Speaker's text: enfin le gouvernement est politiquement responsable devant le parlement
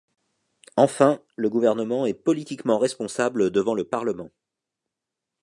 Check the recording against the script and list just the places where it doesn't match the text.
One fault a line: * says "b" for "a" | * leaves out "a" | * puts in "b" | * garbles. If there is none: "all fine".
all fine